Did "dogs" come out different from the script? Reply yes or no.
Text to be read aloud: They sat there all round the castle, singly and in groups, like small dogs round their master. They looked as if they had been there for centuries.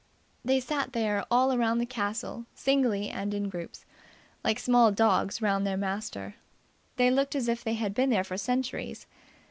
no